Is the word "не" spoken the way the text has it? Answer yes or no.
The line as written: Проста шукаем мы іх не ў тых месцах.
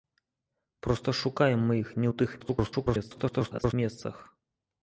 yes